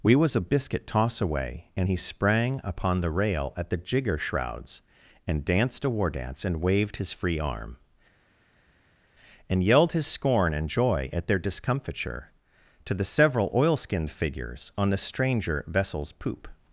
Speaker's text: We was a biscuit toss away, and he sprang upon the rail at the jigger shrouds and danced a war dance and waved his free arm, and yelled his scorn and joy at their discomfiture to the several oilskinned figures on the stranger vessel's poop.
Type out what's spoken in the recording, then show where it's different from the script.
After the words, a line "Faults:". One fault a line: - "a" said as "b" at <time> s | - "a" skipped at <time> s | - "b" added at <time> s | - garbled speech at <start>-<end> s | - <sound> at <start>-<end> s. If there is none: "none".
We was a biscuit toss away, and he sprang upon the rail at the jigger shrouds and danced a war dance and waved his free arm, and yelled his scorn and joy at their discomfiture to the several oilskinned figures on the stranger vessel's poop.
Faults:
none